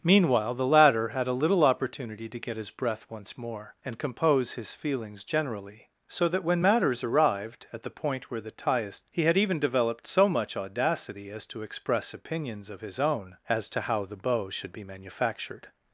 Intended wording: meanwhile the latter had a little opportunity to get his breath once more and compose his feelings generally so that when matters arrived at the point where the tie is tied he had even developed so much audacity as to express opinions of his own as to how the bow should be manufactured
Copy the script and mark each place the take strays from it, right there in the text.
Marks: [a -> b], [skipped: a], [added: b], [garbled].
meanwhile the latter had a little opportunity to get his breath once more and compose his feelings generally so that when matters arrived at the point where the tie is [skipped: tied] he had even developed so much audacity as to express opinions of his own as to how the bow should be manufactured